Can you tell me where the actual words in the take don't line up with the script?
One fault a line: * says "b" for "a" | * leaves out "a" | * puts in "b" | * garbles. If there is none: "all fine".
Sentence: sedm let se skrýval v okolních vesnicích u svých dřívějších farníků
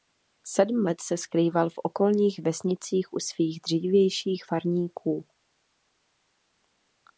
all fine